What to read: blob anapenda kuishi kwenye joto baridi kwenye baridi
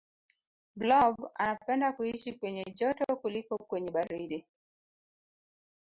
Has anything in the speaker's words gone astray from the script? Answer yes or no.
yes